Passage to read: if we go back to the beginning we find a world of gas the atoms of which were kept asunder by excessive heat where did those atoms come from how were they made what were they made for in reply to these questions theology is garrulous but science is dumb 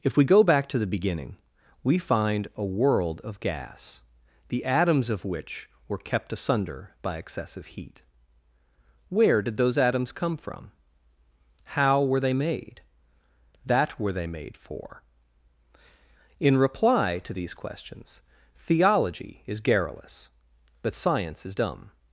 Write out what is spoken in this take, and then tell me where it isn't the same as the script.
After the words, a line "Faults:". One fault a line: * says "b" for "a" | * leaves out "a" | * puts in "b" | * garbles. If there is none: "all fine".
if we go back to the beginning we find a world of gas the atoms of which were kept asunder by excessive heat where did those atoms come from how were they made that were they made for in reply to these questions theology is garrulous but science is dumb
Faults:
* says "that" for "what"